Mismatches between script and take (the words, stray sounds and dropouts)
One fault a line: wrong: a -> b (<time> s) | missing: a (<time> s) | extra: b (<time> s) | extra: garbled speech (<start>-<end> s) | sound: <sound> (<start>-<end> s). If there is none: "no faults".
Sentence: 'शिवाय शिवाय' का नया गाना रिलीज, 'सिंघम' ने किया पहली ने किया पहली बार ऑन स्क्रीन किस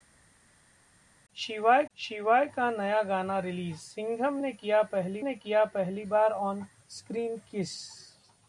no faults